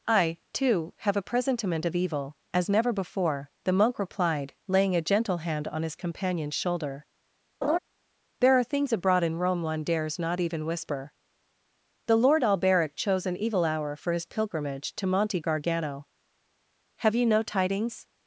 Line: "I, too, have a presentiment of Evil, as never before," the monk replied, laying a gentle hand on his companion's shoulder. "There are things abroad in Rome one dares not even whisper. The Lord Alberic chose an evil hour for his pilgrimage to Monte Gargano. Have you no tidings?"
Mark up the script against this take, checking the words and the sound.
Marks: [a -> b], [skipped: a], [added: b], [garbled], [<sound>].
"I, too, have a presentiment of Evil, as never before," the monk replied, laying a gentle hand on his companion's shoulder. [laugh] "There are things abroad in Rome one dares not even whisper. The Lord Alberic chose an evil hour for his pilgrimage to Monte Gargano. Have you no tidings?"